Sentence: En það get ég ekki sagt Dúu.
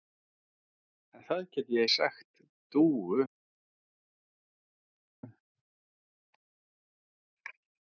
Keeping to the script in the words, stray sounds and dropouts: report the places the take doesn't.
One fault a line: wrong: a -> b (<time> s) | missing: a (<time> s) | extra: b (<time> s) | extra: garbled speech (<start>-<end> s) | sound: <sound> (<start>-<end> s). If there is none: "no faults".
missing: ekki (1.8 s)